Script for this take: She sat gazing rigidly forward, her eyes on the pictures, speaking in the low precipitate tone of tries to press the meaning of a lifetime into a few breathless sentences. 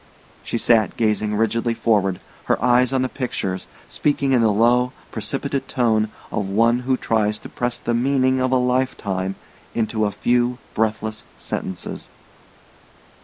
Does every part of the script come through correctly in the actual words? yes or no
no